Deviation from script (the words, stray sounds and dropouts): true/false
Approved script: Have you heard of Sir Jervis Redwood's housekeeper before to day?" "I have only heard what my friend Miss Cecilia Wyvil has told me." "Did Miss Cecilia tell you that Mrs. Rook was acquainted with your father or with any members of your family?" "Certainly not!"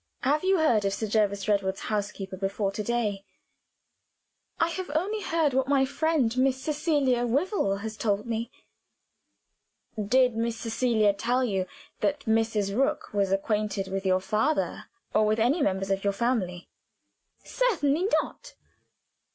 false